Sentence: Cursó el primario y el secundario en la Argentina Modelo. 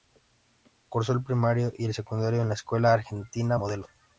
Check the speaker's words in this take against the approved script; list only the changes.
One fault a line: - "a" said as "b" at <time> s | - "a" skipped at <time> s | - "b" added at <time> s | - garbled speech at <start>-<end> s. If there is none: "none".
- "Escuela" added at 2.5 s